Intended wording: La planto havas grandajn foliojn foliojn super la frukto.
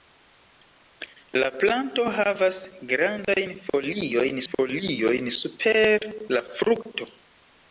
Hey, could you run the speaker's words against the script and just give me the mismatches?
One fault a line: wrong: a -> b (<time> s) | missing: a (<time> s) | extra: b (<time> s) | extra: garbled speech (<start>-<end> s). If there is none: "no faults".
no faults